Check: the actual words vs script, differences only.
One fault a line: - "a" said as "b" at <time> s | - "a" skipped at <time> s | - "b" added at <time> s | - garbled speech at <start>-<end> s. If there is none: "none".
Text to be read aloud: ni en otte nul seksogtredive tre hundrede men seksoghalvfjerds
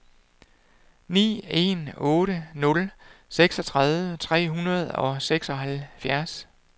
- "men" said as "og" at 5.0 s